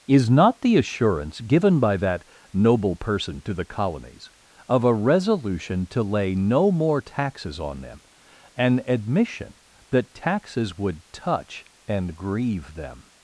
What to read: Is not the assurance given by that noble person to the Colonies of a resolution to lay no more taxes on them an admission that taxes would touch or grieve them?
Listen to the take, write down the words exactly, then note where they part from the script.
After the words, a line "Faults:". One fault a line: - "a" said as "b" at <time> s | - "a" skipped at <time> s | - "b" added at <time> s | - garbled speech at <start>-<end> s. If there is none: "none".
Is not the assurance given by that noble person to the Colonies of a resolution to lay no more taxes on them an admission that taxes would touch and grieve them?
Faults:
- "or" said as "and" at 11.9 s